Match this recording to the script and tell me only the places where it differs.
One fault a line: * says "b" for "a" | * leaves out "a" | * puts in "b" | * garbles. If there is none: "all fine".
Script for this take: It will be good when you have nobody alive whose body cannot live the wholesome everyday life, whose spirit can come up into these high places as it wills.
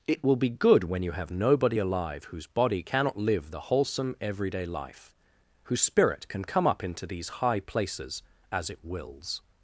all fine